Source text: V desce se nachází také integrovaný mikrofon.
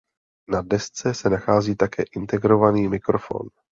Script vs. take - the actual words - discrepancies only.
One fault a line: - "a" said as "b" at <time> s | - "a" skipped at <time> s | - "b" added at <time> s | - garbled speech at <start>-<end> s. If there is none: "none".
- "V" said as "Na" at 0.5 s